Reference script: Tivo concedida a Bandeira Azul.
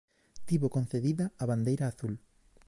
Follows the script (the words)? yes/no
yes